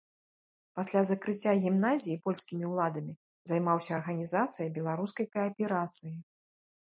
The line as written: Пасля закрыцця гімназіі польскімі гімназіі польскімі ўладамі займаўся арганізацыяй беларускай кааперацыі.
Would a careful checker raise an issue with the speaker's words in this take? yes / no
yes